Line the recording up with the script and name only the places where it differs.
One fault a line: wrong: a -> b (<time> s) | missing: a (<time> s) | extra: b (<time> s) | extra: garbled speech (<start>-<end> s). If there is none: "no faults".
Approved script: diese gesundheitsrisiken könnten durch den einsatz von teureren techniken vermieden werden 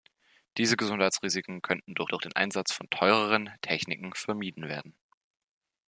extra: durch (2.1 s)